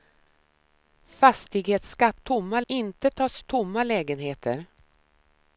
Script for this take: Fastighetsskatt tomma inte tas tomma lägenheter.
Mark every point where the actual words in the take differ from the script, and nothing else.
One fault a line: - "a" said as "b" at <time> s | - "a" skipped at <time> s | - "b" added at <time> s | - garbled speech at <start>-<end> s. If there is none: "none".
none